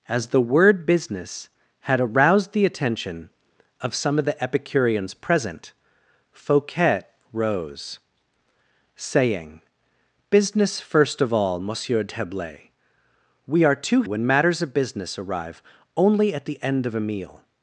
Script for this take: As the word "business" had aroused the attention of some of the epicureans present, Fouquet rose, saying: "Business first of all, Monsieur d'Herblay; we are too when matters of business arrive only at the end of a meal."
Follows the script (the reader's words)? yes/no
yes